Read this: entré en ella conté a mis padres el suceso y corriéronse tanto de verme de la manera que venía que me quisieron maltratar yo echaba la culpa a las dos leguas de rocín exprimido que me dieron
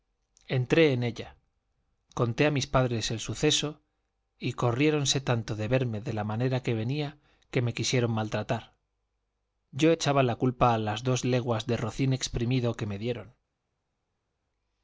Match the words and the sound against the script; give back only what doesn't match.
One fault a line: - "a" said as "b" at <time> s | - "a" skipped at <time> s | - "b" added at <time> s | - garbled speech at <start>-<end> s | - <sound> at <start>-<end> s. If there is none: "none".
none